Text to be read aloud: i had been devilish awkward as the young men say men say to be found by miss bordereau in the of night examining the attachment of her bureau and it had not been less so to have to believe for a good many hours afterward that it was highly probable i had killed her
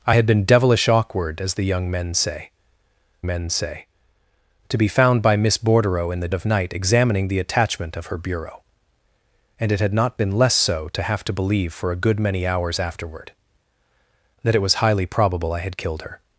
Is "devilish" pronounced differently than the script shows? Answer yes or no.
no